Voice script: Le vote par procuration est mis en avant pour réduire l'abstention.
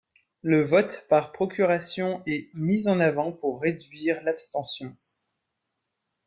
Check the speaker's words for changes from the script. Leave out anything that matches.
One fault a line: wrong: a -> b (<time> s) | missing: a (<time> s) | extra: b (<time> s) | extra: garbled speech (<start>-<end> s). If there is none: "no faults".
no faults